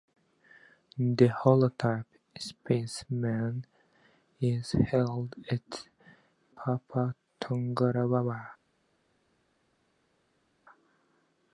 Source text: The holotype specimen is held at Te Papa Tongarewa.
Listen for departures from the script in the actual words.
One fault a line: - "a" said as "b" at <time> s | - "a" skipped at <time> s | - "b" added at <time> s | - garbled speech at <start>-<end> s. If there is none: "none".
- "Te" skipped at 5.9 s